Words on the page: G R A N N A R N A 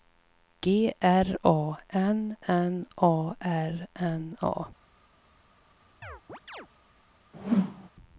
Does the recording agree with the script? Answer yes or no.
yes